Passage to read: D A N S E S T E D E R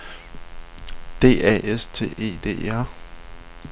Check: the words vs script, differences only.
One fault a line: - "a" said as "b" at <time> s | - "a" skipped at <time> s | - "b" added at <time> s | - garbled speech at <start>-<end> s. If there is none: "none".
- "N S E" skipped at 1.6 s